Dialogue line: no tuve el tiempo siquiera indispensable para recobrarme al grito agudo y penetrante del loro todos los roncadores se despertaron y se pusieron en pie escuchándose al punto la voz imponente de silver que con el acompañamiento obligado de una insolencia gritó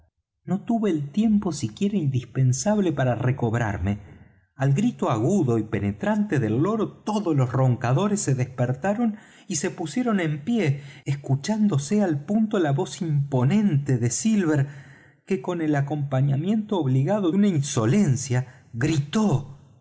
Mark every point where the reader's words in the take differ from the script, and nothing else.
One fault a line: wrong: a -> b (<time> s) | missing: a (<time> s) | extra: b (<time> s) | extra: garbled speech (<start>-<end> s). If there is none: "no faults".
missing: de (17.3 s)